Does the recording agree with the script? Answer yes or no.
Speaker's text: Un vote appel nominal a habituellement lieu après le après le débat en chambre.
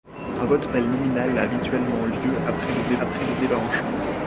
yes